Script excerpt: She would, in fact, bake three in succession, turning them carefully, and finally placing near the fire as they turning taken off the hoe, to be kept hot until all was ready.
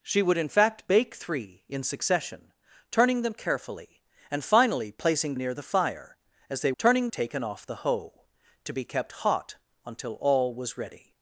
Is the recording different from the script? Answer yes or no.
no